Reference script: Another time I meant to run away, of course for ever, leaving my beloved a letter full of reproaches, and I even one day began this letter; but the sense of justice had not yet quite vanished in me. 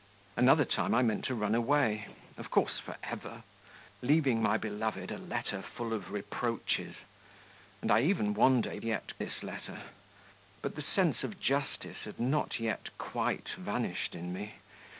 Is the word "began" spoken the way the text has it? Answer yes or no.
no